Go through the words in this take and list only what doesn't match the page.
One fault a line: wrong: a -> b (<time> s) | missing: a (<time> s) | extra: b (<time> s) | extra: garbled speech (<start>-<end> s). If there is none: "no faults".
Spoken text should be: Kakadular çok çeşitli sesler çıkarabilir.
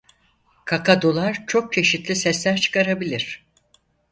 no faults